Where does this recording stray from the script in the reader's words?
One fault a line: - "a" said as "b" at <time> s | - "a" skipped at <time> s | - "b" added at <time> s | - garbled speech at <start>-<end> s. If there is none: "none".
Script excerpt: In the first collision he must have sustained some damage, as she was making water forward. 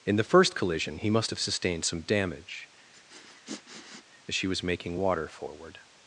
none